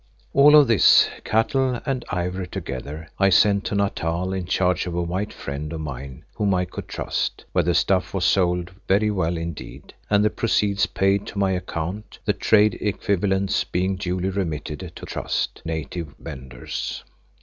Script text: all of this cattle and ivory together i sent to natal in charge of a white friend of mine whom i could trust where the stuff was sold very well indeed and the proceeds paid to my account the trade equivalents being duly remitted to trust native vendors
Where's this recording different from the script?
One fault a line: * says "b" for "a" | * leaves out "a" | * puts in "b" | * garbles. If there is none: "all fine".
all fine